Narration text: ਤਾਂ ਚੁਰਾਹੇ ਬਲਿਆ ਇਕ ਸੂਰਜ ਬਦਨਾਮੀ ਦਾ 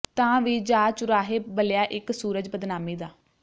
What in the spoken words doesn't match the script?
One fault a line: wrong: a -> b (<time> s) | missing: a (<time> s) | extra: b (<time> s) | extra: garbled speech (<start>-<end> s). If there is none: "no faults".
extra: ਵੀ ਜਾ (0.4 s)